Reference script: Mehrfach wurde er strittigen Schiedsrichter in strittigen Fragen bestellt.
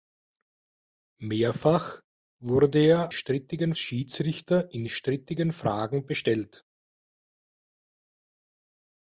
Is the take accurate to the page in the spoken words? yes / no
yes